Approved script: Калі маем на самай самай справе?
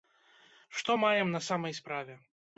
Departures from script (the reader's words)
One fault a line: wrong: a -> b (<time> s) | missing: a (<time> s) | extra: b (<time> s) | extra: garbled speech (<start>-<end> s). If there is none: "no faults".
wrong: Калі -> Што (0.8 s)
missing: самай (1.8 s)